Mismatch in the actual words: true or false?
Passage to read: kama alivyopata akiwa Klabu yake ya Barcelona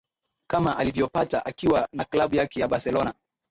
true